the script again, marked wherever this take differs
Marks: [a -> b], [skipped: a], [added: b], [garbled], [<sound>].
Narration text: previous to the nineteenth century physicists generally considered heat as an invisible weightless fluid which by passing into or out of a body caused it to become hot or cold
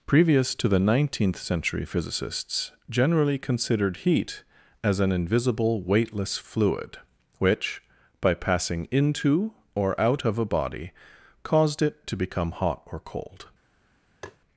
previous to the nineteenth century physicists generally considered heat as an invisible weightless fluid which by passing into or out of a body caused it to become hot or cold [tap]